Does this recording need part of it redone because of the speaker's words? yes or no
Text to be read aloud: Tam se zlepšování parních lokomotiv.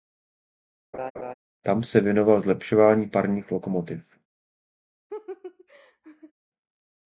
yes